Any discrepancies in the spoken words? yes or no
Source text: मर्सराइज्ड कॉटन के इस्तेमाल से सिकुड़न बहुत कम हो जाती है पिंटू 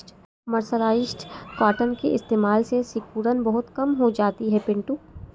no